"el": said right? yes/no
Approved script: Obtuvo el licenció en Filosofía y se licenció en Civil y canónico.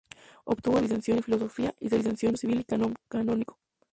yes